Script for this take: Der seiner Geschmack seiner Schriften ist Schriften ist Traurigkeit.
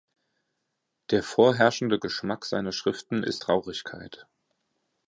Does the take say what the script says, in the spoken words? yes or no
no